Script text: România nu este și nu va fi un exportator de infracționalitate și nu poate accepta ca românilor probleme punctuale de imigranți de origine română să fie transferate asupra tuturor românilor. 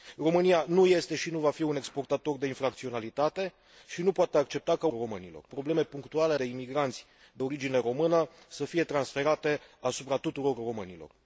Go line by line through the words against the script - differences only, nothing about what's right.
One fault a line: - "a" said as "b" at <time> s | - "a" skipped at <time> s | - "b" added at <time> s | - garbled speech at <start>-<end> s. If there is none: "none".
none